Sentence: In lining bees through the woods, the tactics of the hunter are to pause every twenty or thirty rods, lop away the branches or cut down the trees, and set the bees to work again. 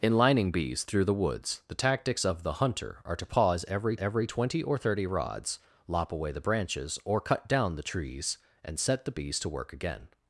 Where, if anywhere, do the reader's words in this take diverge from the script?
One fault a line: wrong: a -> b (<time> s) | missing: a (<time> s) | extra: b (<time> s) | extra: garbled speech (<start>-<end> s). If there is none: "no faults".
extra: every (4.0 s)